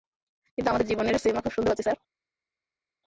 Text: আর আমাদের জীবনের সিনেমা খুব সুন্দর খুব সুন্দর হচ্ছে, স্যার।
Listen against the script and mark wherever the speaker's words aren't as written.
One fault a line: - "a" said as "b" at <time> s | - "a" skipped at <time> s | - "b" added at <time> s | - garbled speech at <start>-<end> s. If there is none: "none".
- "আর" said as "কিন্তু" at 0.6 s
- "খুব সুন্দর" skipped at 1.7 s